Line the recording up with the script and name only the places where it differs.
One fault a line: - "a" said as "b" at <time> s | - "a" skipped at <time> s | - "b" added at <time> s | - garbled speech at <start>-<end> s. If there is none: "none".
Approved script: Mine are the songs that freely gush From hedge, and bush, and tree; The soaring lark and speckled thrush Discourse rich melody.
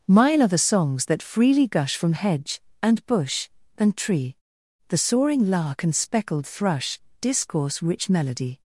none